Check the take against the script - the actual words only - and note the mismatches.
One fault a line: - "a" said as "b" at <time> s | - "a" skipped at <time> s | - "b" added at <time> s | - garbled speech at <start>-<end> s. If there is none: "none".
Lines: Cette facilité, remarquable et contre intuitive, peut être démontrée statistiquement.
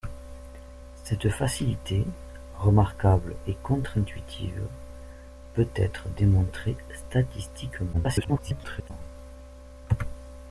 - garbled speech at 7.9-8.9 s